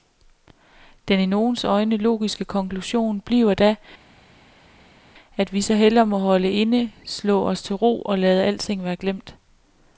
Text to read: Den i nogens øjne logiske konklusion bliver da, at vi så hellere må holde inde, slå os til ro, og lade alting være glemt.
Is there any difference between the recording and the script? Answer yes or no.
no